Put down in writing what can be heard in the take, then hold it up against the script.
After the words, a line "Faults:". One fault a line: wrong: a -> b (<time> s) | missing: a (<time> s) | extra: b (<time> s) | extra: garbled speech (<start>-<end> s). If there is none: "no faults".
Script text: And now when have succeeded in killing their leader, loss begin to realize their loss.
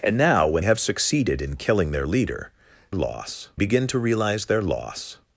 And now when have succeeded in killing their leader, loss begin to realize their loss.
Faults:
no faults